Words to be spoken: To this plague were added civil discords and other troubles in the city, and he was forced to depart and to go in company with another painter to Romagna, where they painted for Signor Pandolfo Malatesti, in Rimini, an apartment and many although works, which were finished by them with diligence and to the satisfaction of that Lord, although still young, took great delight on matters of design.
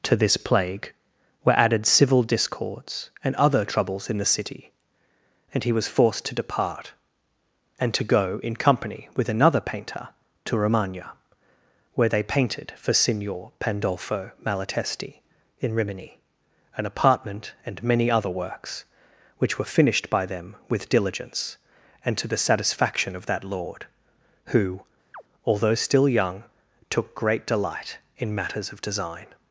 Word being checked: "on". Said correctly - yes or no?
no